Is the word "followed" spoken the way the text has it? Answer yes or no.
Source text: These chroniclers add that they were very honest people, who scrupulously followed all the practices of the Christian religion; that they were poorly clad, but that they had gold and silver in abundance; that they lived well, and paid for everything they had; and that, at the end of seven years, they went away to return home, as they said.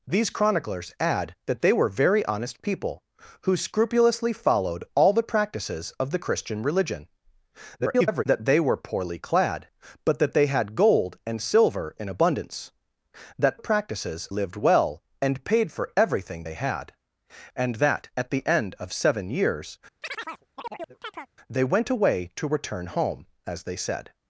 yes